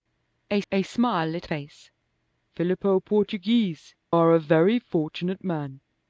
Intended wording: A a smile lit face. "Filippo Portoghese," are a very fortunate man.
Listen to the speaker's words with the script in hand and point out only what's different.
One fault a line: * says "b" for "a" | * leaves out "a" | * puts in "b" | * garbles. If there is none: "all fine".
all fine